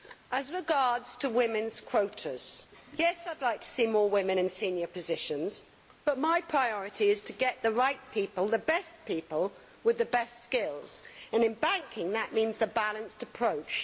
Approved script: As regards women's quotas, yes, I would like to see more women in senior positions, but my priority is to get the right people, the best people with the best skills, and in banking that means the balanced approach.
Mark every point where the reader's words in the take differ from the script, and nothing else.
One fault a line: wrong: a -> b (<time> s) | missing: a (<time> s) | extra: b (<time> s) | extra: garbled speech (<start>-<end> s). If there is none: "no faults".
no faults